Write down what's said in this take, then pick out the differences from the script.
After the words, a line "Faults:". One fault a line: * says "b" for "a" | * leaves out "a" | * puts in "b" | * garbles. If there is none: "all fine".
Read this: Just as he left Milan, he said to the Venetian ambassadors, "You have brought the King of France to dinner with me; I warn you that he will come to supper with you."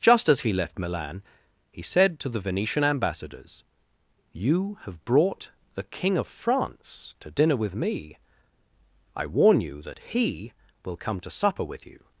Just as he left Milan, he said to the Venetian ambassadors, "You have brought the King of France to dinner with me; I warn you that he will come to supper with you."
Faults:
all fine